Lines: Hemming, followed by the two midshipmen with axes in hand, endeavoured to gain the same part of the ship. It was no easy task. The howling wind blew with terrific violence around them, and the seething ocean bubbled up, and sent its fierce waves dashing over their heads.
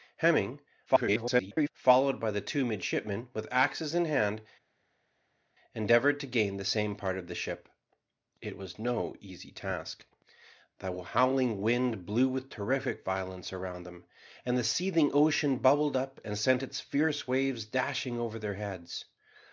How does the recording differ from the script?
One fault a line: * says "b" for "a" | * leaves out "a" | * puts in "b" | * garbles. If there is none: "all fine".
* garbles